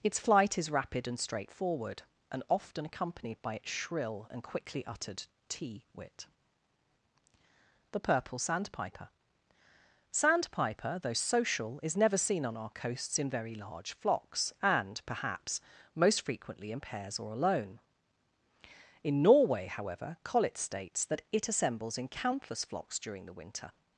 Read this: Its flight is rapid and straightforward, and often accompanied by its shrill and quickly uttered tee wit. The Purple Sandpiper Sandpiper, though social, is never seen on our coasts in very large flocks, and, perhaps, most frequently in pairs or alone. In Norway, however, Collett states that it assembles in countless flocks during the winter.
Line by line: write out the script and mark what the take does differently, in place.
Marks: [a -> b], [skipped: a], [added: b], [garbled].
Its flight is rapid and straightforward, and often accompanied by its shrill and quickly uttered tee wit. The Purple Sandpiper Sandpiper, though social, is never seen on our coasts in very large flocks, and, perhaps, most frequently in pairs or alone. In Norway, however, Collett states that it assembles in countless flocks during the winter.